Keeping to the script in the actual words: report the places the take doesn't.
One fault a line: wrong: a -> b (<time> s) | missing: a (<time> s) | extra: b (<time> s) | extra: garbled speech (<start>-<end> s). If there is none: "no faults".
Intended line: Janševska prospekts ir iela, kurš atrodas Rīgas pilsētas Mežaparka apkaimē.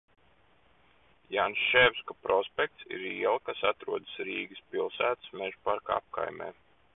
wrong: kurš -> kas (3.5 s)